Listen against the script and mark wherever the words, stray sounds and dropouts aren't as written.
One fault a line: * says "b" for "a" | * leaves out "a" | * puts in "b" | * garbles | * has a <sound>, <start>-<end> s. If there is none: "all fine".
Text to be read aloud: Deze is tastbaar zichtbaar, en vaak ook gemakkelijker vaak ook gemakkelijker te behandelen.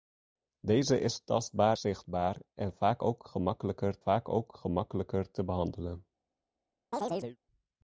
* has a chirp, 6.9-7.4 s